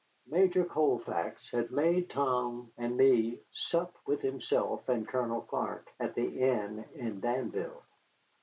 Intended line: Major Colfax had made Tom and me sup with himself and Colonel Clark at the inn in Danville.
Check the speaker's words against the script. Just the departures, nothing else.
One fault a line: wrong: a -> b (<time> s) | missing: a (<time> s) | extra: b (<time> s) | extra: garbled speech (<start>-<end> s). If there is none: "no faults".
no faults